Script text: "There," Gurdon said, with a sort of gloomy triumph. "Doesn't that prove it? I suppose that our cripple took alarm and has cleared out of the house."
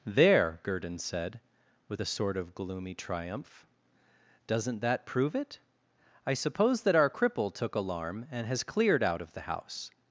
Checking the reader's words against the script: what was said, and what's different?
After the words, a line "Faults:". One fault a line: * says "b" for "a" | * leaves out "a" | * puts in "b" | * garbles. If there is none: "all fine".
"There," Gurdon said, with a sort of gloomy triumph. "Doesn't that prove it? I suppose that our cripple took alarm and has cleared out of the house."
Faults:
all fine